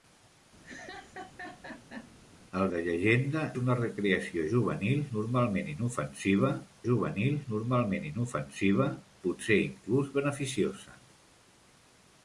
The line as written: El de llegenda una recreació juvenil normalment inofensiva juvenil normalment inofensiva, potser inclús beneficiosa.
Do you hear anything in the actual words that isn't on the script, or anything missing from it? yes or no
no